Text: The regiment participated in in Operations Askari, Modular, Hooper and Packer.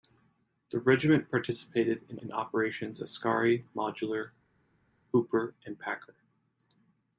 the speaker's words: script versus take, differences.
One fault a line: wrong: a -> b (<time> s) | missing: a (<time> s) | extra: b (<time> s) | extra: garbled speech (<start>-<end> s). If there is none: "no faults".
no faults